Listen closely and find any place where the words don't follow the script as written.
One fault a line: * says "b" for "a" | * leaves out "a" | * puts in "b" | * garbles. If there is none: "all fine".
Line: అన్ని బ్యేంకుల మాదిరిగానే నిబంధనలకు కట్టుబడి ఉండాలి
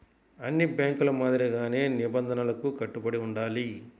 all fine